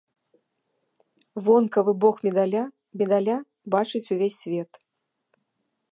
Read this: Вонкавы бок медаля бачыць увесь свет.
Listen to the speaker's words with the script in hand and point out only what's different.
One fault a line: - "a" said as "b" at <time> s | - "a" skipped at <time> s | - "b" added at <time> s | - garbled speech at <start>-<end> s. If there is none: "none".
- "медаля" added at 3.0 s